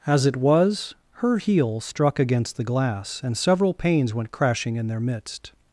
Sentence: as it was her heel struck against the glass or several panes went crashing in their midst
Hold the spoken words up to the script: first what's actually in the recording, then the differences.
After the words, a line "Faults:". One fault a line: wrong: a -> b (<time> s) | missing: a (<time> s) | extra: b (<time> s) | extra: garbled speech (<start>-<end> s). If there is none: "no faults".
as it was her heel struck against the glass and several panes went crashing in their midst
Faults:
wrong: or -> and (3.2 s)